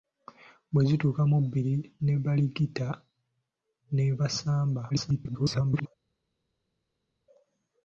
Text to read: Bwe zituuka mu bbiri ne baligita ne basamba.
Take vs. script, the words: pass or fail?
fail